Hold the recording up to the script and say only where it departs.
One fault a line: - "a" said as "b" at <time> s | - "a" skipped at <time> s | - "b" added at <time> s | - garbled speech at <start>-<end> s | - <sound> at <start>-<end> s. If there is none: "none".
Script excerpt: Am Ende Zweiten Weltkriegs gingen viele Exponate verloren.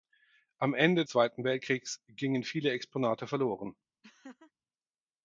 - laugh at 4.0-4.5 s